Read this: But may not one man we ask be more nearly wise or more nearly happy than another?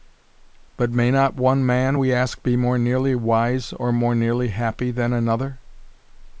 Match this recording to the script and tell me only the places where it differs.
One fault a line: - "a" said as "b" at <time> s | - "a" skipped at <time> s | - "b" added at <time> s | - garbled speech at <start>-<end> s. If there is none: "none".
none